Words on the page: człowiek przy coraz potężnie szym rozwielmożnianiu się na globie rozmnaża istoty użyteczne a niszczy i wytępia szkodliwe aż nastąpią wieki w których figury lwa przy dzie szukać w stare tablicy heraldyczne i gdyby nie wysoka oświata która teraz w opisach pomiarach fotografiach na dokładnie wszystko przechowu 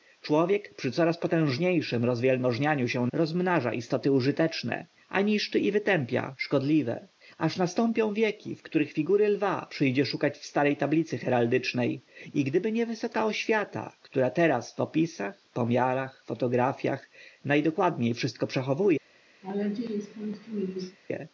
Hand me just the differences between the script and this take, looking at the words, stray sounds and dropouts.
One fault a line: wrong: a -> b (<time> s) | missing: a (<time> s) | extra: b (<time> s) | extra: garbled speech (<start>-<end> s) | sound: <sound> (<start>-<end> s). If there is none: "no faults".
missing: na globie (3.1 s)
sound: laugh (19.4-21.0 s)